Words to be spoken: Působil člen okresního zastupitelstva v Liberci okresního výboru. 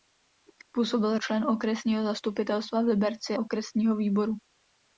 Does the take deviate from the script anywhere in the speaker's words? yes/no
no